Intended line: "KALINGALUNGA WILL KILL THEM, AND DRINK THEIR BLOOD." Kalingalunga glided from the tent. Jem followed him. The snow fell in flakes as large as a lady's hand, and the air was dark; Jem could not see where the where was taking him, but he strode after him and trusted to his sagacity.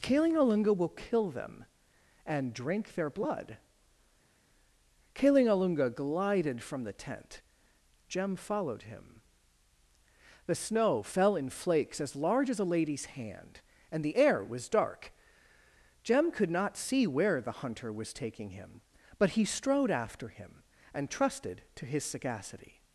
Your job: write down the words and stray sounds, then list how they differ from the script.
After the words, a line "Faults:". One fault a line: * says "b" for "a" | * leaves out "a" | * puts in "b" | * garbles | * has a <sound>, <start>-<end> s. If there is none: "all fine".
"KALINGALUNGA WILL KILL THEM, AND DRINK THEIR BLOOD." Kalingalunga glided from the tent. Jem followed him. The snow fell in flakes as large as a lady's hand, and the air was dark; Jem could not see where the hunter was taking him, but he strode after him and trusted to his sagacity.
Faults:
* says "hunter" for "where"